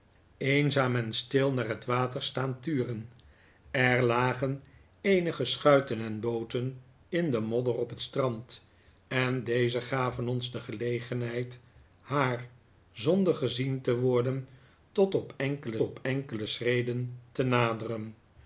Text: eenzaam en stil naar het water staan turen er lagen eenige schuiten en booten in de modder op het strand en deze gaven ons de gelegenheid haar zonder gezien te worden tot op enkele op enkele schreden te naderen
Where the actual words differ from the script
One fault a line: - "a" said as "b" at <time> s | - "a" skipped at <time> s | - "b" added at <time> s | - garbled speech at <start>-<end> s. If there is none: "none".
none